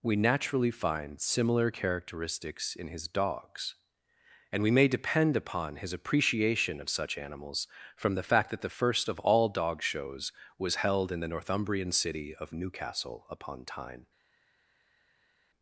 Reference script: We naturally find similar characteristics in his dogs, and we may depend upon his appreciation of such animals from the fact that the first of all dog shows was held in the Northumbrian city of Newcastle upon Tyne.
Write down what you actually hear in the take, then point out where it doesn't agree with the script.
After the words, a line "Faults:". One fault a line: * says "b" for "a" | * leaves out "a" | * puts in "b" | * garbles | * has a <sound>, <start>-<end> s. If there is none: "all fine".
We naturally find similar characteristics in his dogs, and we may depend upon his appreciation of such animals from the fact that the first of all dog shows was held in the Northumbrian city of Newcastle upon Tyne.
Faults:
all fine